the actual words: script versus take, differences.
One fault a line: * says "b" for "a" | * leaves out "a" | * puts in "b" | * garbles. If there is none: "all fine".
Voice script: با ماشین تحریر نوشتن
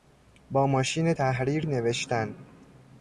all fine